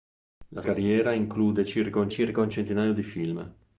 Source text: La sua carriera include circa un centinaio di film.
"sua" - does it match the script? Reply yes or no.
no